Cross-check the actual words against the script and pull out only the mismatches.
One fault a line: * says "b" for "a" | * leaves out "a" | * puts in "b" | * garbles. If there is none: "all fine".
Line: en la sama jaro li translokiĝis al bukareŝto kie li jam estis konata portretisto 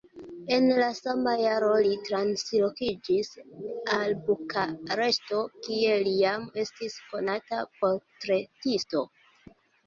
all fine